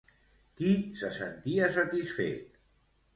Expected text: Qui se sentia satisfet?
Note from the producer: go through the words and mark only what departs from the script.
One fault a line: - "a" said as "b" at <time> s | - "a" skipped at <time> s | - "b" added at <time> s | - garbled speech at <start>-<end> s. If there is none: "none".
none